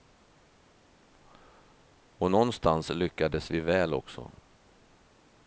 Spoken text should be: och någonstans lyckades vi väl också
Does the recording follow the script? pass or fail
pass